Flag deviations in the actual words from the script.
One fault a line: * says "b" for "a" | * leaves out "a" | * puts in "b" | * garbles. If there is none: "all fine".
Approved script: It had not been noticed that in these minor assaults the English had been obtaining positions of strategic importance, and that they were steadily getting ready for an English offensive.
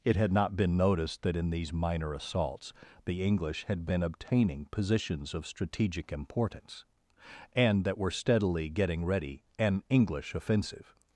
* leaves out "they"
* leaves out "for"